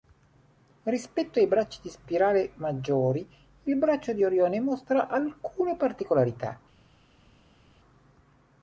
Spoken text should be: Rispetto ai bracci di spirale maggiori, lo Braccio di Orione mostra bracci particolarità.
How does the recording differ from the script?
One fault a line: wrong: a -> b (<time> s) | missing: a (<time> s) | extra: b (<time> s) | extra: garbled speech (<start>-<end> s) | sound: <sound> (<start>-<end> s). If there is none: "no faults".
wrong: lo -> il (3.6 s)
wrong: bracci -> alcune (5.1 s)